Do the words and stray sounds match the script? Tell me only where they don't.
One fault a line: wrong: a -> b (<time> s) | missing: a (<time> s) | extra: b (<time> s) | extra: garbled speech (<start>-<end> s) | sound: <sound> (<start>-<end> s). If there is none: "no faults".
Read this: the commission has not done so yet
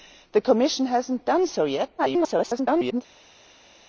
extra: garbled speech (2.0-3.0 s)